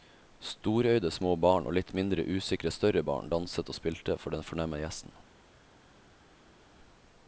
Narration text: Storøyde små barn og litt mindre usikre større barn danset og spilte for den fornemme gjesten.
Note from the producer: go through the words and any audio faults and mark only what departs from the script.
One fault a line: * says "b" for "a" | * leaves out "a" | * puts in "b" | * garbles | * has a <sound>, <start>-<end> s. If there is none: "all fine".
all fine